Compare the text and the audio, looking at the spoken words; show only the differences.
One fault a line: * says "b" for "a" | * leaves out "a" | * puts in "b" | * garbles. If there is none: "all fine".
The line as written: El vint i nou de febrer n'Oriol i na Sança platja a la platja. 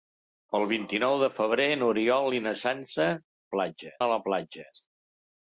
all fine